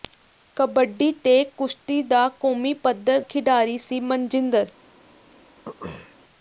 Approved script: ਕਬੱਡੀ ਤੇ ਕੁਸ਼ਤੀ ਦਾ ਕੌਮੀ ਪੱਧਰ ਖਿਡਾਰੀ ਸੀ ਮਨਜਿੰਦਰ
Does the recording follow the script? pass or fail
pass